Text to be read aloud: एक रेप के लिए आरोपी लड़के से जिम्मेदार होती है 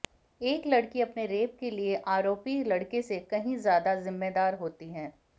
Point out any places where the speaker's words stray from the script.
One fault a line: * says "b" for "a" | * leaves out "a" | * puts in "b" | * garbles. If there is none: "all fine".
* puts in "लड़की अपने"
* puts in "कहीं ज्यादा"